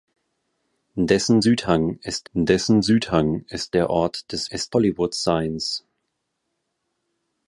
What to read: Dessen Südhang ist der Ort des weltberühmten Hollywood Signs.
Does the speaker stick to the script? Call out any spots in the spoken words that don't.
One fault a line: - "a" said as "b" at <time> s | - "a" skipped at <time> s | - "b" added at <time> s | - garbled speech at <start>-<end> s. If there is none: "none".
- "dessen Südhang ist" added at 2.3 s
- "weltberühmten" said as "ist" at 4.5 s